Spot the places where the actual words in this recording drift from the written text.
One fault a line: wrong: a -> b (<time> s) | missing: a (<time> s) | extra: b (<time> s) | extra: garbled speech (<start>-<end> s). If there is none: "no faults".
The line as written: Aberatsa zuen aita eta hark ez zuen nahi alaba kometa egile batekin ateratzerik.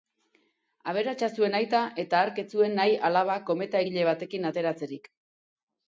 no faults